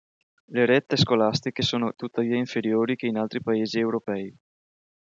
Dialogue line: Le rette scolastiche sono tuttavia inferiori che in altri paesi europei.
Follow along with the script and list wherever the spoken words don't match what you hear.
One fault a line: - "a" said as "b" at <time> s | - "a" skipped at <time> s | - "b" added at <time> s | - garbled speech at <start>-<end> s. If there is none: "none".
none